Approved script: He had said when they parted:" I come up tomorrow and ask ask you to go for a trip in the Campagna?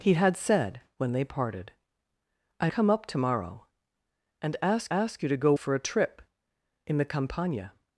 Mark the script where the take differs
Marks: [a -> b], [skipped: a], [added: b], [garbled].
He had said when they parted:" I come up tomorrow and ask ask you to go for a trip in the Campagna?